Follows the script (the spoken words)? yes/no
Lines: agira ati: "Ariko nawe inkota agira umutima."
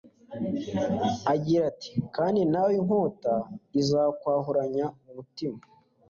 no